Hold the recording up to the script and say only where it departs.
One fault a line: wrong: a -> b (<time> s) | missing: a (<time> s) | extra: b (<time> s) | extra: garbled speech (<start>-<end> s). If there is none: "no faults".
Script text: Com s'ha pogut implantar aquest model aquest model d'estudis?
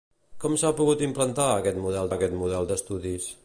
no faults